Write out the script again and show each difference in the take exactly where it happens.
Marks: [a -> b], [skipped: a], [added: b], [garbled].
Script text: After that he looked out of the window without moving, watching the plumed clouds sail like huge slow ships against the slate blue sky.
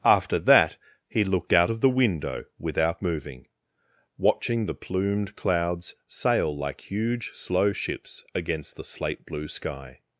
After that he looked out of the window without moving, watching the plumed clouds sail like huge slow ships against the slate blue sky.